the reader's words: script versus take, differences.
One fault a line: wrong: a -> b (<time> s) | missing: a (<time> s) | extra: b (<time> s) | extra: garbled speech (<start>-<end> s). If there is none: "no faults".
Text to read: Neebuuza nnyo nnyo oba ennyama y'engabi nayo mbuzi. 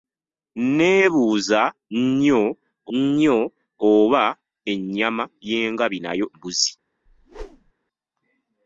no faults